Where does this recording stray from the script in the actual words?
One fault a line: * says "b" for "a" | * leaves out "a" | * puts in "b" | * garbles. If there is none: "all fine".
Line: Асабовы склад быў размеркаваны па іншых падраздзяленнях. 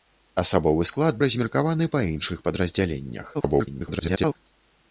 * leaves out "быў"
* garbles